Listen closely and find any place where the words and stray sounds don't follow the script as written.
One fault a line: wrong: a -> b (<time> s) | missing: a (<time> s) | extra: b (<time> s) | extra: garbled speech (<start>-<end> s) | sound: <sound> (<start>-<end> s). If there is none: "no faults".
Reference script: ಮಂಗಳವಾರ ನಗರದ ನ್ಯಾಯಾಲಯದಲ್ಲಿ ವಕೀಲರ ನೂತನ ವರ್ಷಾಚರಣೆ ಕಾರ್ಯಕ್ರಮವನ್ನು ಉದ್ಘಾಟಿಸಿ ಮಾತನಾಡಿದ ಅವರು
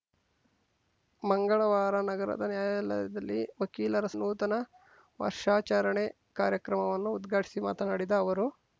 no faults